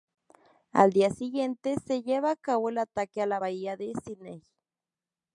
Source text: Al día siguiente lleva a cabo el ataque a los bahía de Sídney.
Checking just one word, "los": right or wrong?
wrong